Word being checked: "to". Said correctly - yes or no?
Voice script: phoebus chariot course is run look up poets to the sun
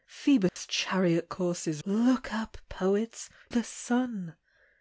no